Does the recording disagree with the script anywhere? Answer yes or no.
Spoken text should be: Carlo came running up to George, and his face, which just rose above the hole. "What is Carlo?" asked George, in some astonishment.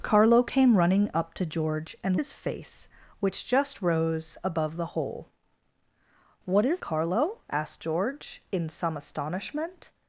no